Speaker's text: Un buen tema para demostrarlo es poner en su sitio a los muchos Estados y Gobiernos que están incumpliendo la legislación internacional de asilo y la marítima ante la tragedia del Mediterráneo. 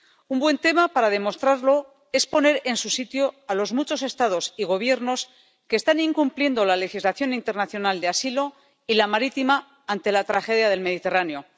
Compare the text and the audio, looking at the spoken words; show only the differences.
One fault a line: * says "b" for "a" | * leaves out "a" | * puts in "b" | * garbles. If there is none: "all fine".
all fine